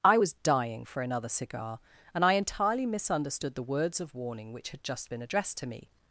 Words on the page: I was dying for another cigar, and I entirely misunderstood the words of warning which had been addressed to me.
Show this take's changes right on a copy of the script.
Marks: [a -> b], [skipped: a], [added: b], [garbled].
I was dying for another cigar, and I entirely misunderstood the words of warning which had [added: just] been addressed to me.